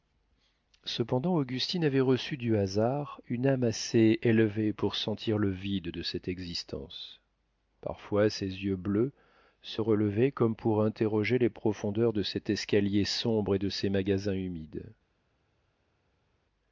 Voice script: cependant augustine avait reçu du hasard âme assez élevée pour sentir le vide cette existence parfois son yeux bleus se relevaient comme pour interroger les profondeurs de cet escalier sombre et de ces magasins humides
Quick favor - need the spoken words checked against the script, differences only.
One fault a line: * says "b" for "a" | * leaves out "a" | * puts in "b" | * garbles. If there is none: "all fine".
* puts in "une"
* puts in "de"
* says "ses" for "son"